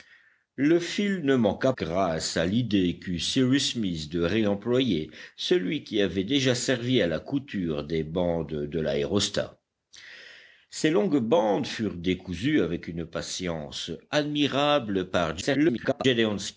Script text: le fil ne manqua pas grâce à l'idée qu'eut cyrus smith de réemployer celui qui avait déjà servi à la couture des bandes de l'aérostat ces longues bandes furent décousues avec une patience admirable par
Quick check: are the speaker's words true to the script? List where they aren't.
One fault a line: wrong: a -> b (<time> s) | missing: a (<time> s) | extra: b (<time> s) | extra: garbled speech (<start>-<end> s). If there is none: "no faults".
missing: pas (1.7 s)
extra: garbled speech (15.4-16.0 s)